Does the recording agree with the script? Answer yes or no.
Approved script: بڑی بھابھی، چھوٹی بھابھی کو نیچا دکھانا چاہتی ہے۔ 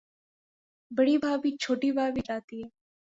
no